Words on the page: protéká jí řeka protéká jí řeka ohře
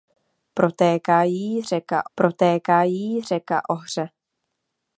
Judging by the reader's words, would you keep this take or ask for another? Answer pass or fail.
pass